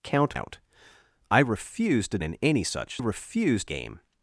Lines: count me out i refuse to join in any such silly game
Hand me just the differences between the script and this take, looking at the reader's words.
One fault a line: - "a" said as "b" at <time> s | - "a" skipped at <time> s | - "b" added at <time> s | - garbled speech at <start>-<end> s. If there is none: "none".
- "me" skipped at 0.4 s
- "join" skipped at 2.2 s
- "silly" said as "refuse" at 3.0 s